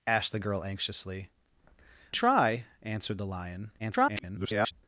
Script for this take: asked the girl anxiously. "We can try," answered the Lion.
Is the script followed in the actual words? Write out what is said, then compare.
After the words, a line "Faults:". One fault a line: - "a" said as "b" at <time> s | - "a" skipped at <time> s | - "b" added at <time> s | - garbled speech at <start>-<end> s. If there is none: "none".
asked the girl anxiously. "Try," answered the Lion. [garbled]
Faults:
- "We can" skipped at 1.3 s
- garbled speech at 3.8-4.7 s